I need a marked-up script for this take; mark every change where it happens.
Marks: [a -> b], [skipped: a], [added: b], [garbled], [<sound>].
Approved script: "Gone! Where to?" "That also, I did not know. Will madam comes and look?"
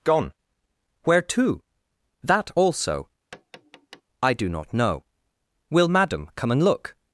"Gone! Where to?" "That also, [tap] I [did -> do] not know. Will madam [comes -> come] and look?"